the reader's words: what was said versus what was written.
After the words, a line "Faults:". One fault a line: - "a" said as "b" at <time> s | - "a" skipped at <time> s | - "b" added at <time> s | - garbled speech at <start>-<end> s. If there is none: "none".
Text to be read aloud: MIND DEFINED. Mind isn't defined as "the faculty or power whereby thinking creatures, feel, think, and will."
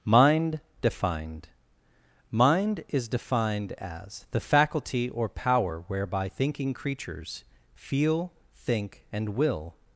MIND DEFINED. Mind is defined as "the faculty or power whereby thinking creatures, feel, think, and will."
Faults:
- "isn't" said as "is" at 2.9 s